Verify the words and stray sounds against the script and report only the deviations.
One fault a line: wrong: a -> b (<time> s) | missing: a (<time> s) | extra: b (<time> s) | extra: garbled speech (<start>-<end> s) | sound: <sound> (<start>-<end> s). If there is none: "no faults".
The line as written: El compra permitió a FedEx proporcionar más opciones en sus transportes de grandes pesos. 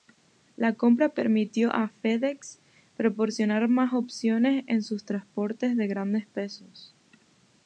wrong: El -> La (0.6 s)